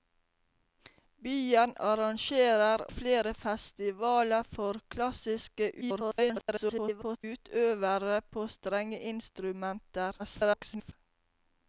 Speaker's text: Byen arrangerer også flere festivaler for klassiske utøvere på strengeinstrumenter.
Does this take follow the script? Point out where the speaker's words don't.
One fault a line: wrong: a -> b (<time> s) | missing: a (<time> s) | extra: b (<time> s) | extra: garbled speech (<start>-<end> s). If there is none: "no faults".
missing: også (2.8 s)
extra: garbled speech (5.8-7.2 s)
extra: garbled speech (10.2-10.9 s)